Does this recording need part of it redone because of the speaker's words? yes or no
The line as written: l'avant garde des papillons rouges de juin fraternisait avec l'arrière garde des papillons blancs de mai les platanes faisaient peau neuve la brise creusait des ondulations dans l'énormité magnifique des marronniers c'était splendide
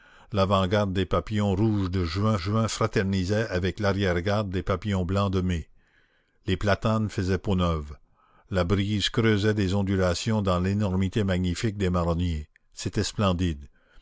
yes